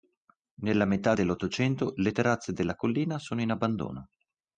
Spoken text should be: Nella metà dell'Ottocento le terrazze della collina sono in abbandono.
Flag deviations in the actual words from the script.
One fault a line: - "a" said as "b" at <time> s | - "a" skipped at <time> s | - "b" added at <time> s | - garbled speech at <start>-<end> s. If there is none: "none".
none